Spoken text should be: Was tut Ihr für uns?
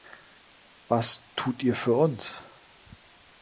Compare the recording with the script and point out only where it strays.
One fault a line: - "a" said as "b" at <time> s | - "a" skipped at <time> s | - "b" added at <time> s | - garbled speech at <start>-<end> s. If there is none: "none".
none